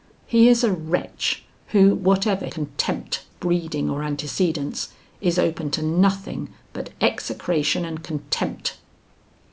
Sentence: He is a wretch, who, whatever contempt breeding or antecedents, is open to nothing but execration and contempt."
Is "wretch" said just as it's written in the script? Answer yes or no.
yes